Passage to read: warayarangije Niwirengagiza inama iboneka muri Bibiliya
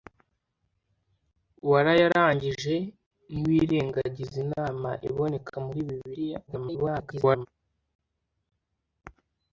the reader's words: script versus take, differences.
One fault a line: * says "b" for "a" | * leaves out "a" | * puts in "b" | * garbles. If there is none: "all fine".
* garbles